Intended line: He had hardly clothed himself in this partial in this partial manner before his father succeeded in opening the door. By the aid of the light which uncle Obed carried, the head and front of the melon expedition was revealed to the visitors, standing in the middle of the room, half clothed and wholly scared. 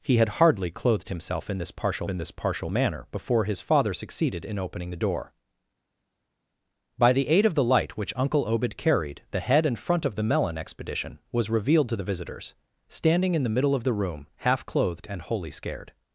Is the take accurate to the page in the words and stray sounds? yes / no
yes